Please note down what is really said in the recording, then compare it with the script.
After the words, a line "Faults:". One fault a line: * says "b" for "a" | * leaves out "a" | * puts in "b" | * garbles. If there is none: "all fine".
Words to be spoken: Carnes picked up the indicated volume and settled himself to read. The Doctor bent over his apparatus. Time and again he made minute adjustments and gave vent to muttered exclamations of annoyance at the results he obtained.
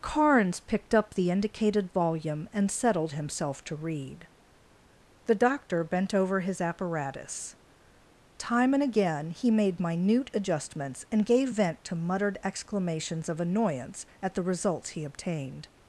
Carnes picked up the indicated volume and settled himself to read. The Doctor bent over his apparatus. Time and again he made minute adjustments and gave vent to muttered exclamations of annoyance at the results he obtained.
Faults:
all fine